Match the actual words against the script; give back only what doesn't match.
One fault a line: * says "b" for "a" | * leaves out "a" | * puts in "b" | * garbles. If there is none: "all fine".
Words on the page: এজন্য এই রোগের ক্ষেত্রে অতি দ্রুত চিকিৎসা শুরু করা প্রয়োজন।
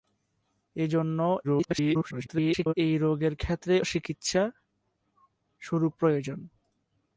* garbles
* leaves out "অতি দ্রুত"
* leaves out "করা"